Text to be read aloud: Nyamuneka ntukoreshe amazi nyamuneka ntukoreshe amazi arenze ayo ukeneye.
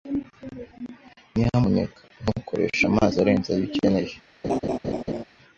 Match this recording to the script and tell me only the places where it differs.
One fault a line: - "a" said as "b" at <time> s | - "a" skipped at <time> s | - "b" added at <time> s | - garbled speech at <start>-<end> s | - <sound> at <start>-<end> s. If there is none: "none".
- "nyamuneka ntukoreshe amazi" skipped at 3.2 s
- laugh at 4.4-5.2 s